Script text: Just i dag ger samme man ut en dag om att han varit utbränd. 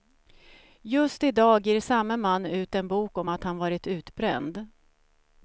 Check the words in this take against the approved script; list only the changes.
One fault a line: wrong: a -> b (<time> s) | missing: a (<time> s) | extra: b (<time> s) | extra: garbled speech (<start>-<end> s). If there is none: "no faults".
wrong: dag -> bok (2.9 s)